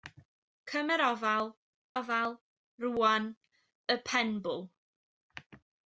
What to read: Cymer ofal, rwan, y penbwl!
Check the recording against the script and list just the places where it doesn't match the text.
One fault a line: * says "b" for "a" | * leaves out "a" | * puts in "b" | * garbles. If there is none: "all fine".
* puts in "ofal"